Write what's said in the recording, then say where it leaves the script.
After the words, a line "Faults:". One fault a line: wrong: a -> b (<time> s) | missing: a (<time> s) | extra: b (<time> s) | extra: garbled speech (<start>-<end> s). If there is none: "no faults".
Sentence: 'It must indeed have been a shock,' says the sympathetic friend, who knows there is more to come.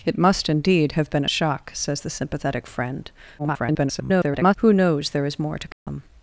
'It must indeed have been a shock,' says the sympathetic friend, [garbled] who knows there is more to come.
Faults:
extra: garbled speech (3.4-4.6 s)